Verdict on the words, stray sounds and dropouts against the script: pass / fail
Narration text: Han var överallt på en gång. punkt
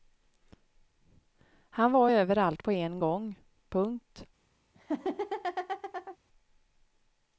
fail